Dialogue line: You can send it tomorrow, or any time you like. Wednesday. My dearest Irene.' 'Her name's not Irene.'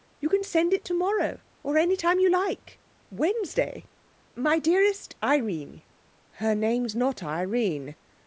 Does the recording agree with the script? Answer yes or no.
yes